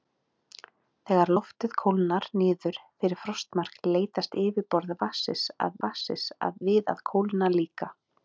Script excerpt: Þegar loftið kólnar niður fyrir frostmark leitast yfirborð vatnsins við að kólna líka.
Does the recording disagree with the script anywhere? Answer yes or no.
yes